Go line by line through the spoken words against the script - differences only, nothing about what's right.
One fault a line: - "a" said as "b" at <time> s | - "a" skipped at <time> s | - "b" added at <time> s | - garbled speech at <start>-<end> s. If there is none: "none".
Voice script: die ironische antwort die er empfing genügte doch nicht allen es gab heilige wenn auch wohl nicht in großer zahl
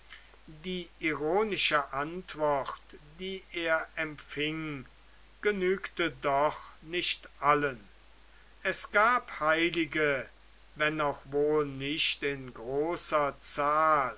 none